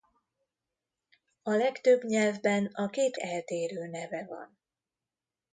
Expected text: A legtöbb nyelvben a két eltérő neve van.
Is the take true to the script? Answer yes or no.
yes